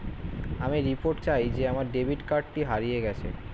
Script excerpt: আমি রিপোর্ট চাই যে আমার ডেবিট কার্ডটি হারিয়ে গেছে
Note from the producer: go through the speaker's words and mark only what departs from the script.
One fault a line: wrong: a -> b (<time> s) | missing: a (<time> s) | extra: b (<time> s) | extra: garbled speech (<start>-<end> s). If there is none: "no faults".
no faults